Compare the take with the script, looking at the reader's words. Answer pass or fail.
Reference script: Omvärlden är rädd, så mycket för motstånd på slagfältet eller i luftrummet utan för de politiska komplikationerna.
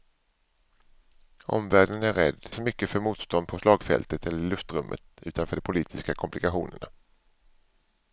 pass